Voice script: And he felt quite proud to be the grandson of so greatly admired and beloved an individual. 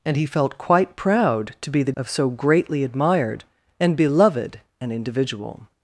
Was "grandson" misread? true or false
true